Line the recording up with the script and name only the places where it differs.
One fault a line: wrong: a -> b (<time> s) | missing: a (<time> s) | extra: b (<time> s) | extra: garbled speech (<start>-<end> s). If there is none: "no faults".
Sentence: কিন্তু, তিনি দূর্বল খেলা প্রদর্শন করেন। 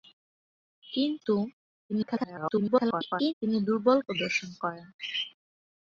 extra: garbled speech (1.9-3.3 s)
missing: খেলা (4.0 s)